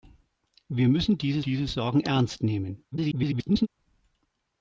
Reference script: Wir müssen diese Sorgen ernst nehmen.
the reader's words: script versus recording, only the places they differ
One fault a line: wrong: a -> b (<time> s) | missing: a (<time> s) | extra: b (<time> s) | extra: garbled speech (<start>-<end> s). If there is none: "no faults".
extra: diese (1.4 s)
extra: garbled speech (2.9-3.7 s)